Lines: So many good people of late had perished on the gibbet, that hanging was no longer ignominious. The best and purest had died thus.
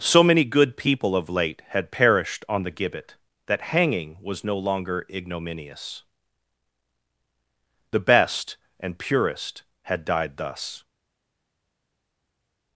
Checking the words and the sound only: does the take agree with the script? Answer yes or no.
yes